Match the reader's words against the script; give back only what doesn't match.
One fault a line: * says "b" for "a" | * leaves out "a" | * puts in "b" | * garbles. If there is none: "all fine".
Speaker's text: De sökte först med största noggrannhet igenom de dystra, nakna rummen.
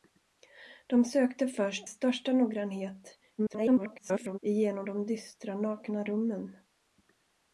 * leaves out "med"
* garbles